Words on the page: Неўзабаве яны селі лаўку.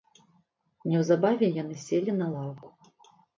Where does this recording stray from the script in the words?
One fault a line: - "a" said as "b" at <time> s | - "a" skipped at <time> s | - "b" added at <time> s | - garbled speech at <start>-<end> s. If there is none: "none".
- "на" added at 2.2 s